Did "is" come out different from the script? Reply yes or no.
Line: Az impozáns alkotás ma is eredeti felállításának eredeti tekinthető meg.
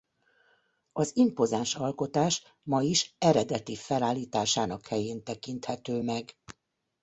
no